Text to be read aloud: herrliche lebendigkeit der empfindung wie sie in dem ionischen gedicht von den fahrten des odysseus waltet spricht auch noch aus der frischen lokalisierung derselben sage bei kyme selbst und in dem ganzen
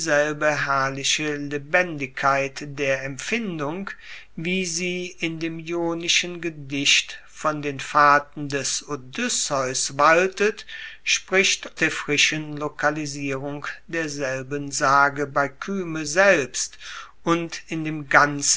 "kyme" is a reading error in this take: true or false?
false